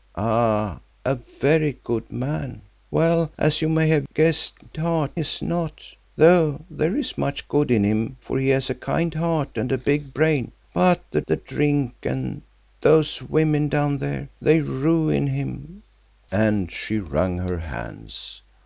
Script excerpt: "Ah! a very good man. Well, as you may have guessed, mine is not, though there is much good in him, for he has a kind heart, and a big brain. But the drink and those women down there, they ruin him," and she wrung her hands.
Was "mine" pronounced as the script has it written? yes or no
no